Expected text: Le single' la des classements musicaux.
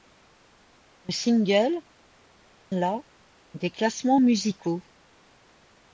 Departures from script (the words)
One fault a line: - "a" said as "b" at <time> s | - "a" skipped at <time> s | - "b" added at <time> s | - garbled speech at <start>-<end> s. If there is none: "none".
none